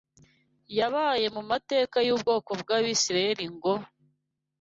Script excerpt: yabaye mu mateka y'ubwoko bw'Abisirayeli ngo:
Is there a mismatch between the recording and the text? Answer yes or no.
no